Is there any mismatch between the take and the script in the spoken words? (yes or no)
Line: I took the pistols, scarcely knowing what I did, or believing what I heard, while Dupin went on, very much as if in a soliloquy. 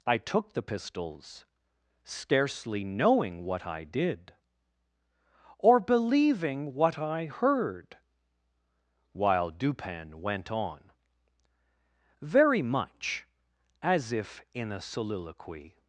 no